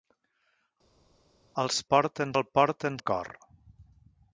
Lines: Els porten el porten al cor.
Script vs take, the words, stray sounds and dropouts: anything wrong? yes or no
no